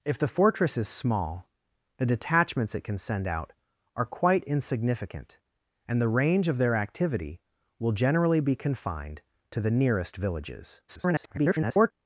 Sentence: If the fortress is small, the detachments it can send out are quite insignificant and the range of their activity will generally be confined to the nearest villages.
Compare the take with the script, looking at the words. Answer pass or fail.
fail